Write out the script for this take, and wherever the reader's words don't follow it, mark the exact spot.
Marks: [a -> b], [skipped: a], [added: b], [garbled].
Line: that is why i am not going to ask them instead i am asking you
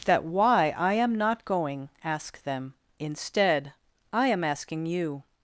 that [skipped: is] why i am not going [skipped: to] ask them instead i am asking you